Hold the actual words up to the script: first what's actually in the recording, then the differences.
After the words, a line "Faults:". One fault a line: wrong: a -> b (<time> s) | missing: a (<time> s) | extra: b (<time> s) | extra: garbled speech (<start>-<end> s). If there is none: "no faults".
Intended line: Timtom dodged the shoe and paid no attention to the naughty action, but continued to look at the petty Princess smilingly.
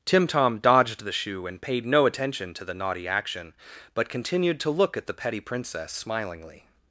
Timtom dodged the shoe and paid no attention to the naughty action, but continued to look at the petty Princess smilingly.
Faults:
no faults